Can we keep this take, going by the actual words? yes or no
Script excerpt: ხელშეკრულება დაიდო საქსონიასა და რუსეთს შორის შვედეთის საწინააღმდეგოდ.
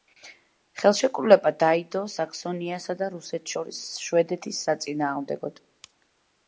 yes